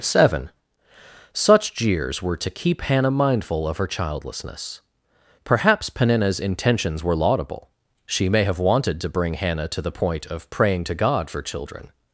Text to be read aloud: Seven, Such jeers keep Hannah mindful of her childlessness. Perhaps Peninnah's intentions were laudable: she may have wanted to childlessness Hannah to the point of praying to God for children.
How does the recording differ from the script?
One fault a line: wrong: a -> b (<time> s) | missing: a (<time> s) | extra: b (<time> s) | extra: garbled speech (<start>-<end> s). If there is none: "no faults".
extra: were to (2.2 s)
wrong: childlessness -> bring (9.1 s)